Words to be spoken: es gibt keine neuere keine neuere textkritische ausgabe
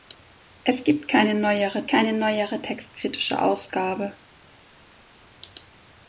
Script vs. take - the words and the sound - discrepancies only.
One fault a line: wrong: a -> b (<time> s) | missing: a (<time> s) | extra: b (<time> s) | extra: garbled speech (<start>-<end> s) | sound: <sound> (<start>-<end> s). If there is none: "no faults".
no faults